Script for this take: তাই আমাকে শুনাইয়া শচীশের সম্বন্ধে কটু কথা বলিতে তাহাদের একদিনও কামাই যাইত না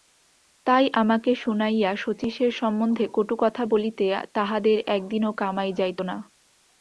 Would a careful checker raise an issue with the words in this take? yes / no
no